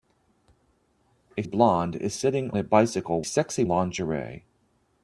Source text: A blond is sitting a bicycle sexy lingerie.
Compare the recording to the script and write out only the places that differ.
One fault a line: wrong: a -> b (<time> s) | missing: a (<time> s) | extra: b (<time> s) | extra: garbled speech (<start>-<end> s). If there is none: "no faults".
no faults